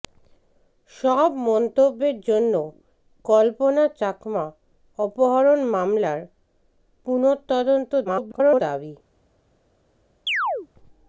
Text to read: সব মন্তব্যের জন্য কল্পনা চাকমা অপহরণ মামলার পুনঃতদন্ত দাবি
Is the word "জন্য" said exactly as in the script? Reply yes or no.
yes